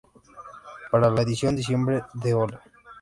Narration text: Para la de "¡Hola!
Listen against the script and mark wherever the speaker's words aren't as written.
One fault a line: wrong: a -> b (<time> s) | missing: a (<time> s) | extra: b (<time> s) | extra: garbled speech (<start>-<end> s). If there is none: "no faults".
extra: edición diciembre (1.2 s)